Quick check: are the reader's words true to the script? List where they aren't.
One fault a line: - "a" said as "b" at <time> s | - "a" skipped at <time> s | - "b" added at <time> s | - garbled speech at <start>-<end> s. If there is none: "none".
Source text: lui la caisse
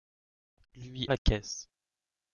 none